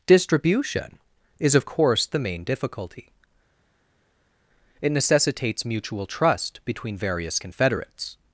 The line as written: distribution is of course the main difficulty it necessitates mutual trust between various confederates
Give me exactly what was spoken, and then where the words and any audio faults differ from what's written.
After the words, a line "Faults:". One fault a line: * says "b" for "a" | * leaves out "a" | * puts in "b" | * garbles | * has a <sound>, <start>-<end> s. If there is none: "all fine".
distribution is of course the main difficulty it necessitates mutual trust between various confederates
Faults:
all fine